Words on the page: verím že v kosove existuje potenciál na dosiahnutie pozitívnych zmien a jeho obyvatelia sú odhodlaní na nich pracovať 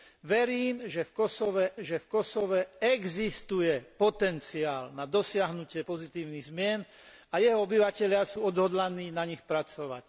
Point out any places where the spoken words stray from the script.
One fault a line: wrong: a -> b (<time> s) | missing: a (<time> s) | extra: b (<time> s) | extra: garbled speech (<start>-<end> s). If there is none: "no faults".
extra: že v kosove (1.8 s)